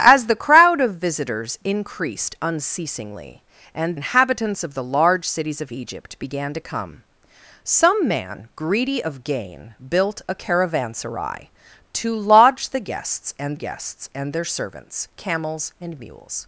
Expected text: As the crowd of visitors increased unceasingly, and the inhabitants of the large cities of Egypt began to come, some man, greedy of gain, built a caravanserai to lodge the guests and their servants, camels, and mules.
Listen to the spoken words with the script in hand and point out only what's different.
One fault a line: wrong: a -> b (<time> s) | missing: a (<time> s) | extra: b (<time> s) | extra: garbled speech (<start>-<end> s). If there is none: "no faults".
missing: the (4.0 s)
extra: guests and (13.5 s)